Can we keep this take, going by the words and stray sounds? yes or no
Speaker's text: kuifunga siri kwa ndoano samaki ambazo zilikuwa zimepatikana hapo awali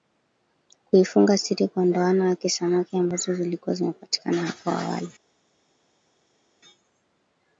no